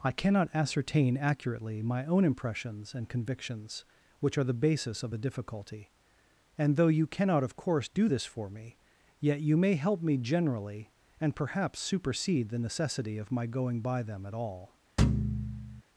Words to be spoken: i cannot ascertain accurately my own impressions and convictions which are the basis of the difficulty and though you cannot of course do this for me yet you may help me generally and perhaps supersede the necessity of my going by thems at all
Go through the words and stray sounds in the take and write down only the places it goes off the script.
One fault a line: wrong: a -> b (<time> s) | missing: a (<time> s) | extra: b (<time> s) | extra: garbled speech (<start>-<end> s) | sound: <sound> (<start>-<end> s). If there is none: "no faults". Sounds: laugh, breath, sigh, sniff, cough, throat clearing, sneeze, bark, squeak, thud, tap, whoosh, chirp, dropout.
wrong: thems -> them (14.0 s)
sound: thud (15.0-15.8 s)